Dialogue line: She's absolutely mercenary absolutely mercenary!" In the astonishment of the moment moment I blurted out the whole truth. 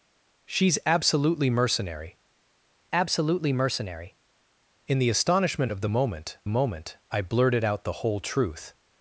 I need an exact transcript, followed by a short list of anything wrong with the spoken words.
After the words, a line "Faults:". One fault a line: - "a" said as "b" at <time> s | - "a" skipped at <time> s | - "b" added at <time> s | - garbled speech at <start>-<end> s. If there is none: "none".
She's absolutely mercenary absolutely mercenary!" In the astonishment of the moment moment I blurted out the whole truth.
Faults:
none